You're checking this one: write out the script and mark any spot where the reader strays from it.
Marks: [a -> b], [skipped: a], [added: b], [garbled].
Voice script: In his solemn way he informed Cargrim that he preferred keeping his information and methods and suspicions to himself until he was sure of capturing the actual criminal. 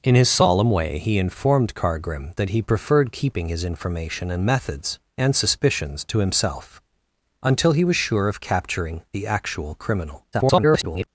In his solemn way he informed Cargrim that he preferred keeping his information and methods and suspicions to himself until he was sure of capturing the actual criminal. [garbled]